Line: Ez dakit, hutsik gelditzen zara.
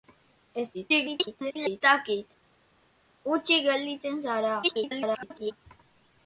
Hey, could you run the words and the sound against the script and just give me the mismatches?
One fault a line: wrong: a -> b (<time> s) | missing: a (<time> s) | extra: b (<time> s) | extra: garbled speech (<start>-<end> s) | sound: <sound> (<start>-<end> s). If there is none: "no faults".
extra: garbled speech (0.7-1.8 s)
extra: garbled speech (4.6-5.5 s)